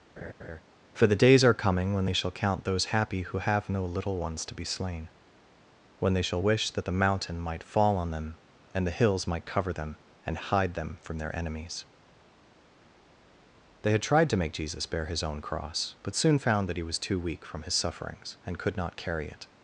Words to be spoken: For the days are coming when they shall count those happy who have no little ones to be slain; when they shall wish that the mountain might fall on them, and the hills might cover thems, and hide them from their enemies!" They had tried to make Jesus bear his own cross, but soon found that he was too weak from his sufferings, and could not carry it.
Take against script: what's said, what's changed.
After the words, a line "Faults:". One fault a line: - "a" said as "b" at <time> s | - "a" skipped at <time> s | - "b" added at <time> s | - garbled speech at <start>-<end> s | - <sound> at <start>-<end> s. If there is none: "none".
For the days are coming when they shall count those happy who have no little ones to be slain; when they shall wish that the mountain might fall on them, and the hills might cover them, and hide them from their enemies!" They had tried to make Jesus bear his own cross, but soon found that he was too weak from his sufferings, and could not carry it.
Faults:
- laugh at 0.2-0.6 s
- "thems" said as "them" at 9.7 s